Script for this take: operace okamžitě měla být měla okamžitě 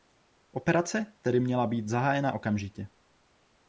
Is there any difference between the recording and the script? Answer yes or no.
yes